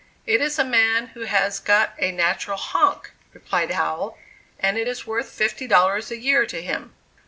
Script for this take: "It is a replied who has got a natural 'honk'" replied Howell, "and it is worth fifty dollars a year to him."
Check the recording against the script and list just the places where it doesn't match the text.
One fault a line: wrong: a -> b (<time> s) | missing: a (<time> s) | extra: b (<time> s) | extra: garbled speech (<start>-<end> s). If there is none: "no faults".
wrong: replied -> man (0.6 s)